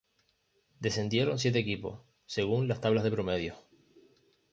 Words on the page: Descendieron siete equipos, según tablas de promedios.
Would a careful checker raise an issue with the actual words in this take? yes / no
yes